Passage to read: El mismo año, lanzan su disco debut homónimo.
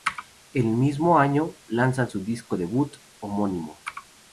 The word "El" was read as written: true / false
true